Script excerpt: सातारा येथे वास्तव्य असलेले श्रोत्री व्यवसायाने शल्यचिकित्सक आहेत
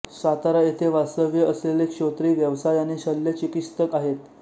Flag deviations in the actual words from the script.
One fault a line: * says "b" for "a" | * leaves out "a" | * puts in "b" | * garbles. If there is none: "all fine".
all fine